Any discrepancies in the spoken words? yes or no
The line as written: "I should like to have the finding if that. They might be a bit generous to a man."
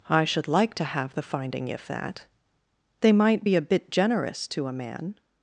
no